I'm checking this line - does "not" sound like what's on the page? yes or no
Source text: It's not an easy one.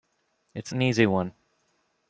no